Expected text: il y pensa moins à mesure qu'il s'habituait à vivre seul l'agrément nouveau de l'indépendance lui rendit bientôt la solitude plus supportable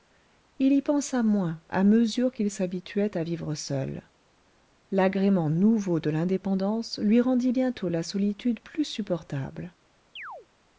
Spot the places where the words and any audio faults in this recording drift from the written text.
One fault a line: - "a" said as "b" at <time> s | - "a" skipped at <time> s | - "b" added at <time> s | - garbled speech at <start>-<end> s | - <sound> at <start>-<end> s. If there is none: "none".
- chirp at 10.2-10.5 s